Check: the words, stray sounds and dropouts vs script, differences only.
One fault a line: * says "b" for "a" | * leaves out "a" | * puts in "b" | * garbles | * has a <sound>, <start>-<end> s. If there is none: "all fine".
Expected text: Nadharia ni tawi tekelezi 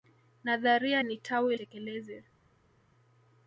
all fine